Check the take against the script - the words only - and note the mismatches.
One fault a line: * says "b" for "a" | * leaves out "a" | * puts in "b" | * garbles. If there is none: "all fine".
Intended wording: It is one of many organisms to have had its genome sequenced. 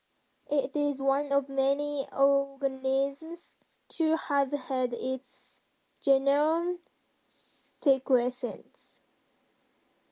all fine